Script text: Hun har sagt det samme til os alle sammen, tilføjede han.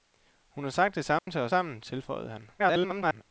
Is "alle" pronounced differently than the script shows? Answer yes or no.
yes